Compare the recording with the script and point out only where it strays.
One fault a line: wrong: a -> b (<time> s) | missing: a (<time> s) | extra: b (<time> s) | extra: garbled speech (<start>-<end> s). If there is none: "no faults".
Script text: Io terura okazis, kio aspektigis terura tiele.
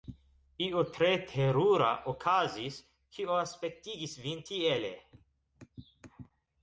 extra: tre (1.0 s)
wrong: terura -> vin (4.3 s)